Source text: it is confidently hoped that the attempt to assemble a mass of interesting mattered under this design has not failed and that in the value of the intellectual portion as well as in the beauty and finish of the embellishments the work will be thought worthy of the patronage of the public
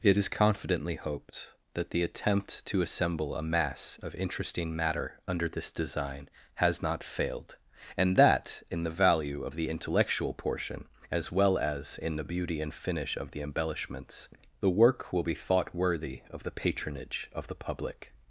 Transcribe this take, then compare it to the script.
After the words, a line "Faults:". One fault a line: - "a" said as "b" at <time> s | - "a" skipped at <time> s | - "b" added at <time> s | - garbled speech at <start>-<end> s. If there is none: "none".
it is confidently hoped that the attempt to assemble a mass of interesting matter under this design has not failed and that in the value of the intellectual portion as well as in the beauty and finish of the embellishments the work will be thought worthy of the patronage of the public
Faults:
- "mattered" said as "matter" at 4.8 s